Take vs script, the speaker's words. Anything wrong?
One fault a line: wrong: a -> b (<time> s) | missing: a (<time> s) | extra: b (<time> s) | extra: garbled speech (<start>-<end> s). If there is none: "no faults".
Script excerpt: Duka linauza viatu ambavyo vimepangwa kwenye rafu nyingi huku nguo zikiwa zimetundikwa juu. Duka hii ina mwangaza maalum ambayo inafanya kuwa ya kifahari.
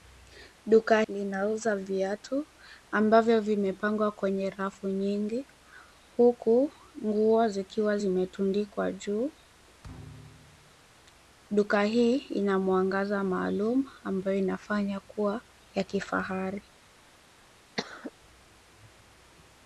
no faults